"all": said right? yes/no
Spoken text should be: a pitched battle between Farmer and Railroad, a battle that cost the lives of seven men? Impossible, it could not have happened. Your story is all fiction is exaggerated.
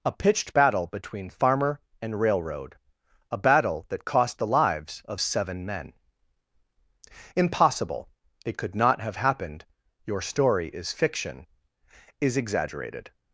no